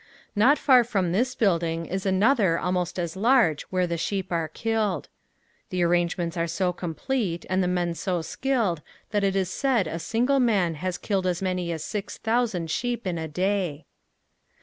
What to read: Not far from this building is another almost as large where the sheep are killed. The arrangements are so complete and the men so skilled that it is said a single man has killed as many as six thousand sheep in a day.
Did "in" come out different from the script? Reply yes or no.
no